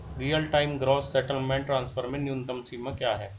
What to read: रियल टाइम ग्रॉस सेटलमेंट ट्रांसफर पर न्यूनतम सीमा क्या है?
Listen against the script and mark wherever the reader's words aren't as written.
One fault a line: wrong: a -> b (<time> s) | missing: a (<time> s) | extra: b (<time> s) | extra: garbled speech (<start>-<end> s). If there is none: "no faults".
wrong: पर -> में (2.1 s)